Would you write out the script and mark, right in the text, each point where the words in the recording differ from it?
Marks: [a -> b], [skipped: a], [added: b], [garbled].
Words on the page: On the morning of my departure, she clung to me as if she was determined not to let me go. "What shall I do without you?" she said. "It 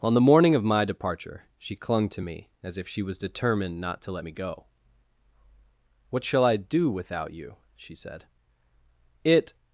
On the morning of my departure, she clung to me as if she was determined not to let me go. "What shall I do without you?" she said. "It